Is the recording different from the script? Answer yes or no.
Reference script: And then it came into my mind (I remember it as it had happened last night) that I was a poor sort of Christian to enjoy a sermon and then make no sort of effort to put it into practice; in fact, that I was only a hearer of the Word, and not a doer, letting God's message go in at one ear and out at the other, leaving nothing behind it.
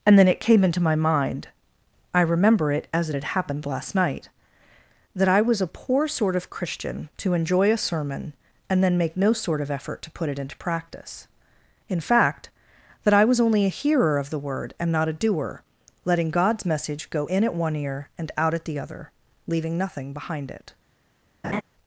no